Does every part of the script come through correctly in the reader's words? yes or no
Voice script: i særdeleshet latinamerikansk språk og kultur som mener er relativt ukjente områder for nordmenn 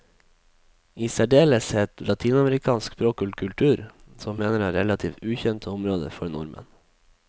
yes